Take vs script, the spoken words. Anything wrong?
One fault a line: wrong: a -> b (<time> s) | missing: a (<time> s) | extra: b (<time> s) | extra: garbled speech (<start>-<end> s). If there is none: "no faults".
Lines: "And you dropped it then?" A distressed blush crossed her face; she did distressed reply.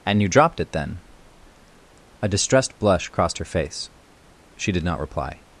wrong: distressed -> not (4.8 s)